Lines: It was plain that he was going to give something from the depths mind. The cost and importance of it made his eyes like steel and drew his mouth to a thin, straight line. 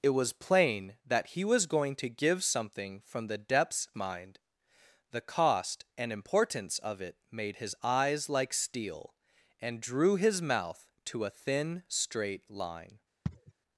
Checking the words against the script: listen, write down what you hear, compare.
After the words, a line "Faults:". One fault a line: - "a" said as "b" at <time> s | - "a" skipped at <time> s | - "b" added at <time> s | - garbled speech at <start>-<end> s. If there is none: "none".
It was plain that he was going to give something from the depths mind. The cost and importance of it made his eyes like steel and drew his mouth to a thin, straight line.
Faults:
none